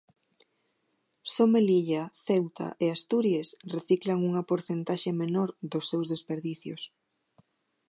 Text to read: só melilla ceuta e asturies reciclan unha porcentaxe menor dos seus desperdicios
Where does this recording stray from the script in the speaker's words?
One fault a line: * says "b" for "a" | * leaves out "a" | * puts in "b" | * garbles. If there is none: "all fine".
all fine